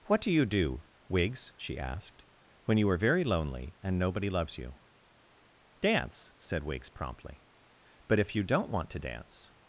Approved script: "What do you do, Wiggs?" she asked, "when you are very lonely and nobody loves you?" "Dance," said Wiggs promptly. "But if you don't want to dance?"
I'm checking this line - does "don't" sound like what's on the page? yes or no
yes